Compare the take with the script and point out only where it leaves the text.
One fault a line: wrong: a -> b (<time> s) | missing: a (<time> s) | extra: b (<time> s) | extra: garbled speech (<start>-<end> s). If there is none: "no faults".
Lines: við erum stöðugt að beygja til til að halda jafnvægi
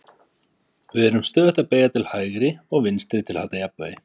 extra: hægri og vinstri (2.1 s)